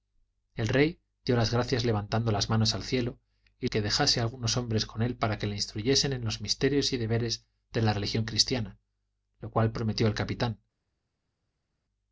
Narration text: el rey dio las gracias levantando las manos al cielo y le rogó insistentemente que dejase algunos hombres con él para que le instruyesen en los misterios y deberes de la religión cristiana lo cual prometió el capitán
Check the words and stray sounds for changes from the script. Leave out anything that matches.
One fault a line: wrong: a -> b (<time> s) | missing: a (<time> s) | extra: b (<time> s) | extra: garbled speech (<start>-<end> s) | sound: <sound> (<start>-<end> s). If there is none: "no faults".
missing: le rogó insistentemente (3.7 s)